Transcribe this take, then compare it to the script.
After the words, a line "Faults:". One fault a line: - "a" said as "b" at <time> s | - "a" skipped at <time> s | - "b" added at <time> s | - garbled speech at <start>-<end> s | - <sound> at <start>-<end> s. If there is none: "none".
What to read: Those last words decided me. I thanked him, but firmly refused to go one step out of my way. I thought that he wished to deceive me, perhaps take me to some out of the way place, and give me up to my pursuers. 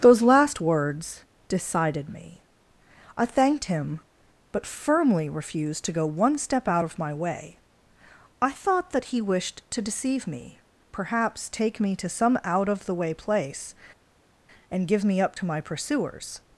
Those last words decided me. I thanked him, but firmly refused to go one step out of my way. I thought that he wished to deceive me, perhaps take me to some out of the way place, and give me up to my pursuers.
Faults:
none